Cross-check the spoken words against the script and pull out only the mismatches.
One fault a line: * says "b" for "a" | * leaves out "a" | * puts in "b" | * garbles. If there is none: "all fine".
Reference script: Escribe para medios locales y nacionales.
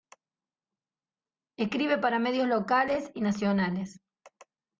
all fine